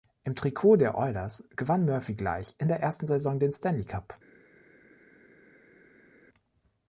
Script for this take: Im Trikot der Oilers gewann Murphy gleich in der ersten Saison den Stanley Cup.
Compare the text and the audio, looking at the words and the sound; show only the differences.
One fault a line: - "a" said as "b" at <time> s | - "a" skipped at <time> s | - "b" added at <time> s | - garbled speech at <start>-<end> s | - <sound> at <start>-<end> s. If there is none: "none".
none